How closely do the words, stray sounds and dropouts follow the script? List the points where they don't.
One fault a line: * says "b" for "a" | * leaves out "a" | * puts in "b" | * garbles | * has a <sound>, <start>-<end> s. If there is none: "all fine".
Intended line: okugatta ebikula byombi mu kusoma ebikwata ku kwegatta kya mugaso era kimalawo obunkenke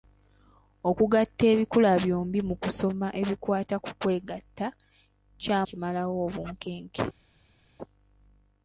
* leaves out "mugaso era"